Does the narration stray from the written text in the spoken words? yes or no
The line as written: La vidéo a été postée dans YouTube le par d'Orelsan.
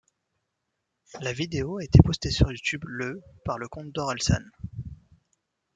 yes